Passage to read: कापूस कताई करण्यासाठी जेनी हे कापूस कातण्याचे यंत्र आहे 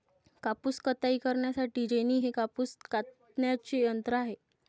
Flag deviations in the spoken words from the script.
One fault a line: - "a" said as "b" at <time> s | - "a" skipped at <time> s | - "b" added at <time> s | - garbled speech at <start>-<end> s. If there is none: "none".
none